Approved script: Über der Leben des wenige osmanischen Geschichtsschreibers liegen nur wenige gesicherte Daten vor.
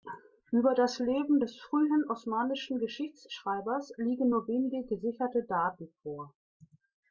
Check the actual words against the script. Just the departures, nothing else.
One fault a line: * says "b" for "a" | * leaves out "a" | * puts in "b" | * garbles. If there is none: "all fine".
* says "das" for "der"
* says "frühen" for "wenige"